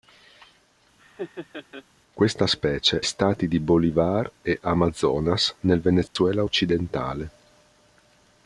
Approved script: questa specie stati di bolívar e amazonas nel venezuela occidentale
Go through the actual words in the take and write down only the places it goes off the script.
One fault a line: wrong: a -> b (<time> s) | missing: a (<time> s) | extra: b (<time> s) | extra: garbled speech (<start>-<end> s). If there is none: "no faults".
no faults